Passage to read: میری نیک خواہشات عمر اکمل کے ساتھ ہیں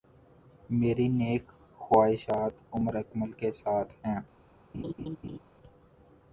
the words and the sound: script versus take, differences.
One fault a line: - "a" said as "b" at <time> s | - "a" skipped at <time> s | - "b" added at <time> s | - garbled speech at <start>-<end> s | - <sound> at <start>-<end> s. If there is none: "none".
- laugh at 4.7-5.4 s